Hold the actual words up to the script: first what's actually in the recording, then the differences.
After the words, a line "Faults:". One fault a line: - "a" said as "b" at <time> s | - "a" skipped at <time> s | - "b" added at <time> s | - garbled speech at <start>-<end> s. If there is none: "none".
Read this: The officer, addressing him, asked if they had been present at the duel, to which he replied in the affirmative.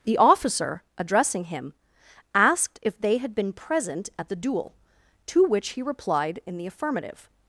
The officer, addressing him, asked if they had been present at the duel, to which he replied in the affirmative.
Faults:
none